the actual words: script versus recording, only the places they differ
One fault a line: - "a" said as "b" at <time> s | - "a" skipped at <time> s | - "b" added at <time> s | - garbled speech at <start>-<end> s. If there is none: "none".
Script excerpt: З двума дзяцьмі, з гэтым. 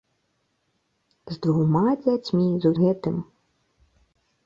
none